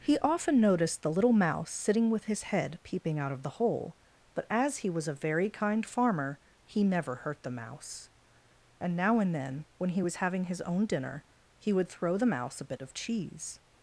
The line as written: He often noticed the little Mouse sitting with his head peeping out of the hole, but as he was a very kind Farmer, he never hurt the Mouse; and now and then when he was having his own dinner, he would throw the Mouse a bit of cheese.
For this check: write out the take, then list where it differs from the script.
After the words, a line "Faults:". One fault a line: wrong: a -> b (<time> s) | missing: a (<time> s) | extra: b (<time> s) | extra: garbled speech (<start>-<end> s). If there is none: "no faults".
He often noticed the little Mouse sitting with his head peeping out of the hole, but as he was a very kind Farmer, he never hurt the Mouse; and now and then when he was having his own dinner, he would throw the Mouse a bit of cheese.
Faults:
no faults